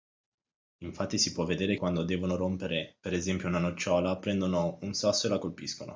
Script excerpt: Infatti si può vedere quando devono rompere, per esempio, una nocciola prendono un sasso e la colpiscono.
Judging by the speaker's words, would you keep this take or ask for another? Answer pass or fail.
pass